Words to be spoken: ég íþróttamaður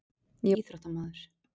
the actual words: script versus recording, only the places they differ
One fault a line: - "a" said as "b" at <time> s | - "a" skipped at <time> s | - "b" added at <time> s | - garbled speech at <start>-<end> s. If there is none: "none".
none